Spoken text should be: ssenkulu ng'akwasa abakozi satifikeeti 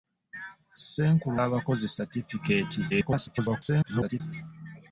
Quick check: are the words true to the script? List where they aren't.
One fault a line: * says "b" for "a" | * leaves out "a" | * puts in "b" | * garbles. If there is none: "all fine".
* leaves out "ng'akwasa"
* garbles